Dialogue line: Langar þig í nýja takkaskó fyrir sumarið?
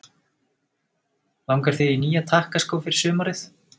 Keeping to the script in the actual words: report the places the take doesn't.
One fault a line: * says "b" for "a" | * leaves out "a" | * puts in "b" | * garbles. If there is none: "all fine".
all fine